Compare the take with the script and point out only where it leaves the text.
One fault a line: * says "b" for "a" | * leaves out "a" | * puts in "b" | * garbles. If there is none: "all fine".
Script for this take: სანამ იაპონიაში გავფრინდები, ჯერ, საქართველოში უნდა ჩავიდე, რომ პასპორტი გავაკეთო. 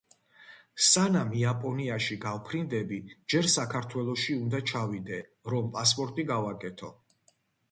all fine